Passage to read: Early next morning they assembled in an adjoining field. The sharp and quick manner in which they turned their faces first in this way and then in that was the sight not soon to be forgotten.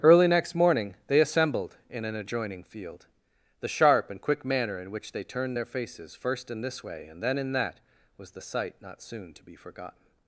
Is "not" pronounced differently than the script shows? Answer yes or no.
no